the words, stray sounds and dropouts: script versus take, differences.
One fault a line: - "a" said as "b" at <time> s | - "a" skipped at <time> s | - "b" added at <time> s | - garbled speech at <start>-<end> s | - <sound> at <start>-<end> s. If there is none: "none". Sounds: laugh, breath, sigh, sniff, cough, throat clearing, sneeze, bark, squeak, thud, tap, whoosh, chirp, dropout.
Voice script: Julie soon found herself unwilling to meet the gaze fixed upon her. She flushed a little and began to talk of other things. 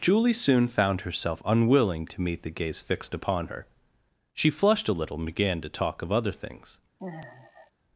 - sigh at 7.0-7.7 s